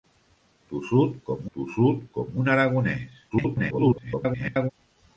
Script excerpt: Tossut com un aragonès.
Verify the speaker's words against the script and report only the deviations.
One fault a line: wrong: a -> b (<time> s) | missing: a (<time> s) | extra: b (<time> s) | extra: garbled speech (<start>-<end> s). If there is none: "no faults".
extra: tossut com (1.6 s)
extra: garbled speech (3.3-4.7 s)